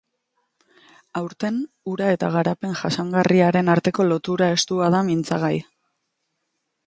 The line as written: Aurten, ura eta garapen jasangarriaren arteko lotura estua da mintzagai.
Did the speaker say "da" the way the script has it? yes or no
yes